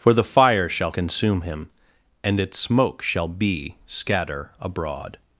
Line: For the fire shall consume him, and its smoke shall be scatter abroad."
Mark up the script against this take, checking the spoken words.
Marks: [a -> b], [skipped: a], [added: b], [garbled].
For the fire shall consume him, and its smoke shall be scatter abroad."